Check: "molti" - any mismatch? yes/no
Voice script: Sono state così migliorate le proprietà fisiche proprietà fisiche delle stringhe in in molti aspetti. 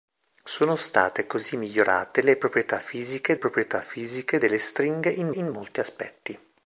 no